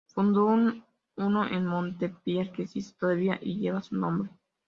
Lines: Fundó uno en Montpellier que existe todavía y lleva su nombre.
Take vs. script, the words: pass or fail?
pass